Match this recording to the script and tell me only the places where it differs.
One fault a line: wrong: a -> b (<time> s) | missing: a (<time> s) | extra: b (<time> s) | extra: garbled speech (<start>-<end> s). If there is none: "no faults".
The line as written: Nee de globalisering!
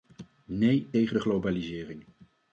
extra: tegen (0.9 s)